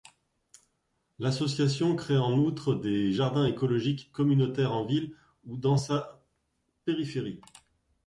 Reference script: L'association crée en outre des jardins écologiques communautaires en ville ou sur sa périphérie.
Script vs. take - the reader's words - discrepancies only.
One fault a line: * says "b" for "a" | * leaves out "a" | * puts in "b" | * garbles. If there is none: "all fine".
* says "dans" for "sur"